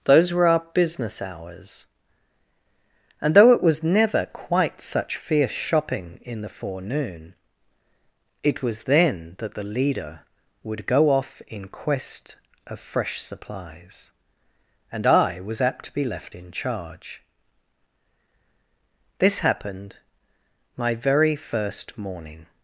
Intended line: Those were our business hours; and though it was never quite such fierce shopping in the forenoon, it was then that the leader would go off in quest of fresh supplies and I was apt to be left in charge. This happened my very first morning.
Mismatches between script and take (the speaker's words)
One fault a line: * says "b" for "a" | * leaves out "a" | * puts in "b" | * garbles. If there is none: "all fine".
all fine